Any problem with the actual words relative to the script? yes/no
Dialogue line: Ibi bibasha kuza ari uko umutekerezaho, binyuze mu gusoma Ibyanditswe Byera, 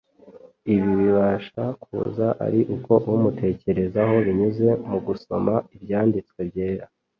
no